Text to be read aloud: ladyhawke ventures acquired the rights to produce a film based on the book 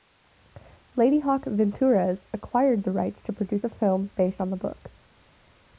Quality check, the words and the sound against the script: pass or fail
pass